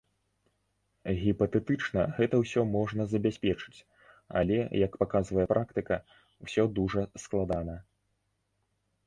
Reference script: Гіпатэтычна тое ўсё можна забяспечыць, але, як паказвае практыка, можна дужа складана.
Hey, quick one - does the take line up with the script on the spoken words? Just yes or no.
no